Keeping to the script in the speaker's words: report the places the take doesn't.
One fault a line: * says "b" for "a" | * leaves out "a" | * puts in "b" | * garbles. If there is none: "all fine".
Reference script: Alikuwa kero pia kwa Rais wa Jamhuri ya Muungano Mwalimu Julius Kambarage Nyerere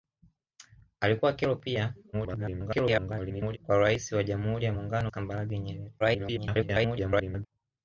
* garbles
* leaves out "Mwalimu Julius"
* garbles